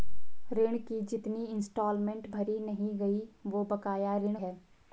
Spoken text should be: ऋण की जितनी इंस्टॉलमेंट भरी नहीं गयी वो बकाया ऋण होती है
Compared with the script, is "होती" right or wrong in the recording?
wrong